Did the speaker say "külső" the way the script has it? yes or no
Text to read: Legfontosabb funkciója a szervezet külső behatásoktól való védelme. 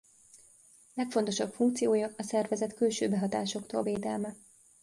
yes